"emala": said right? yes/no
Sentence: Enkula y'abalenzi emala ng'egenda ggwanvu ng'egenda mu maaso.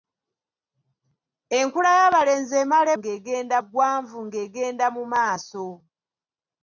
yes